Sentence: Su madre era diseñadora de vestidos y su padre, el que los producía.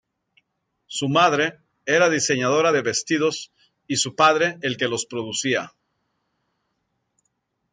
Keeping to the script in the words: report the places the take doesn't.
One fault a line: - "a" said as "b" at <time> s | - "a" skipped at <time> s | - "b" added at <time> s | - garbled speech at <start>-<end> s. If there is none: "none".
none